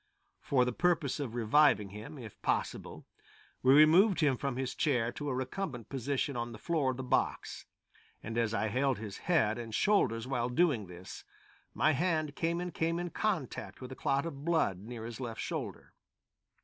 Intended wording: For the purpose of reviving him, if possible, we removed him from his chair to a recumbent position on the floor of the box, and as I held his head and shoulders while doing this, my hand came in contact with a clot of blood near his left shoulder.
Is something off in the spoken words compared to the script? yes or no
yes